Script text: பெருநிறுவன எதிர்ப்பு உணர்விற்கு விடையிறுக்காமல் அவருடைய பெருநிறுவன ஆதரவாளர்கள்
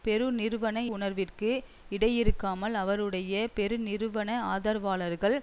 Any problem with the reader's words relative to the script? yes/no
yes